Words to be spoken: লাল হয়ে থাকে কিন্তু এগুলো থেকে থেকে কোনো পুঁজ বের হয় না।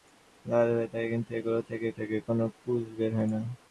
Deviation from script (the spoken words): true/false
false